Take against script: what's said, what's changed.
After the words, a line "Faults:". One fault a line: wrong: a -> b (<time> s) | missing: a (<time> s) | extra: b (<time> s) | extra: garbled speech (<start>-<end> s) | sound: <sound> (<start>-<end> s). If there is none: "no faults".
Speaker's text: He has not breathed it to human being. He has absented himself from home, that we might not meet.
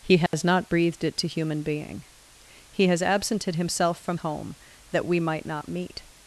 He has not breathed it to human being. He has absented himself from home, that we might not meet.
Faults:
sound: dropout (0.3-0.3 s)